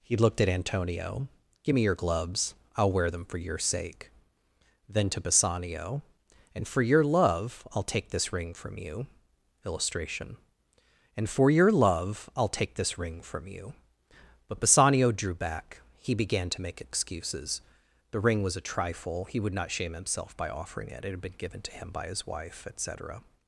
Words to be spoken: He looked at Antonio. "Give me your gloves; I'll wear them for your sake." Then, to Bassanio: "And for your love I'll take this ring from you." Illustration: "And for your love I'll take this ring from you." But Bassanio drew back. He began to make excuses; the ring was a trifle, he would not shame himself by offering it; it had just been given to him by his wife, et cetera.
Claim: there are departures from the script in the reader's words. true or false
true